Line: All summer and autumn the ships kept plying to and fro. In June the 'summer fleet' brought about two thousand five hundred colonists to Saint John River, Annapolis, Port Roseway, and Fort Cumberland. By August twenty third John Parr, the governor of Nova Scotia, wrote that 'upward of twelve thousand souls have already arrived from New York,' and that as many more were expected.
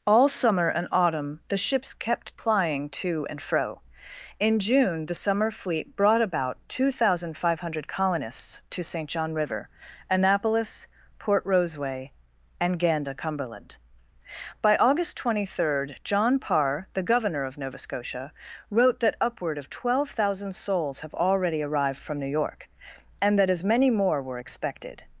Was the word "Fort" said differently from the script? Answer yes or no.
yes